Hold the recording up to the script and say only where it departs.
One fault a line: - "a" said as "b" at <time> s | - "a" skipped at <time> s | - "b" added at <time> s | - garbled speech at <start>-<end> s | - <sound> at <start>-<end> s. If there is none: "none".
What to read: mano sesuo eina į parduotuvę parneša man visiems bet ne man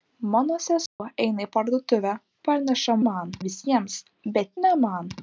- dropout at 0.9-1.0 s